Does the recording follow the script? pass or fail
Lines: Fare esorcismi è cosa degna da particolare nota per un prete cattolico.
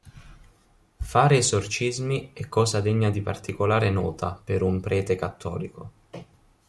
fail